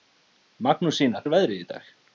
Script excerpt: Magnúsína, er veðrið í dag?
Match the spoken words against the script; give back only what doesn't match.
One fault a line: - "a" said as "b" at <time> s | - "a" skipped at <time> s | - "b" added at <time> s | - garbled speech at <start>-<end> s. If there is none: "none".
none